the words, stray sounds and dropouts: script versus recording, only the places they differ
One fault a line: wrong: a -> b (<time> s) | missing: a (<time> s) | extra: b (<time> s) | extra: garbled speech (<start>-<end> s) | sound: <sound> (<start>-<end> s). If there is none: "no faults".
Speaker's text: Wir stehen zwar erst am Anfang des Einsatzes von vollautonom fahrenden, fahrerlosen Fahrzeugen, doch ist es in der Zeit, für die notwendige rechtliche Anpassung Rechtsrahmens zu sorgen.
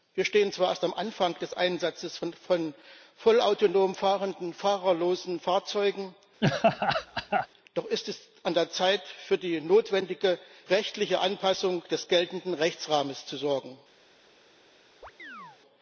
sound: laugh (6.4-7.5 s)
wrong: in -> an (8.4 s)
extra: des geltenden (11.9 s)
sound: chirp (15.0-15.6 s)